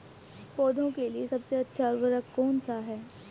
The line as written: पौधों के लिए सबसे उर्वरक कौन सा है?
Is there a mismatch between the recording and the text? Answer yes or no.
yes